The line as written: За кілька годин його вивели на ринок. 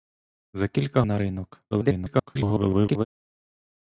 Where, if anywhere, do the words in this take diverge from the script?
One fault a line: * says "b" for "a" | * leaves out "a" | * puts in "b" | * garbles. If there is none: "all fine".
* leaves out "годин його вивели"
* garbles